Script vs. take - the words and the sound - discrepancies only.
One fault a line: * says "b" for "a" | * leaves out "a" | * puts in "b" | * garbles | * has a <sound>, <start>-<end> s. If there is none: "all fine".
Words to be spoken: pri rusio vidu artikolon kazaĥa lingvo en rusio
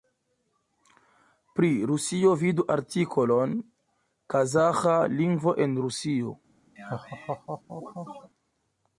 * has a laugh, 6.8-8.3 s